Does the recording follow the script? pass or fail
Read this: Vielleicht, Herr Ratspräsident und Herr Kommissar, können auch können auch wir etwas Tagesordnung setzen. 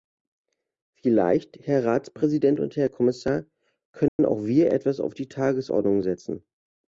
fail